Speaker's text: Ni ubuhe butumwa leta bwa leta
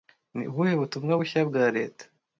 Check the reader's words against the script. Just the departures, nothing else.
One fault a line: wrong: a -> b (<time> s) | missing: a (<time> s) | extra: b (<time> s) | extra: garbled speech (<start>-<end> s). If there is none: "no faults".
wrong: leta -> bushya (1.2 s)